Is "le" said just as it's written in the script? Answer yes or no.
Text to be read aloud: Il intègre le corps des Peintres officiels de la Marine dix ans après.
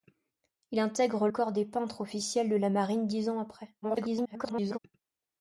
no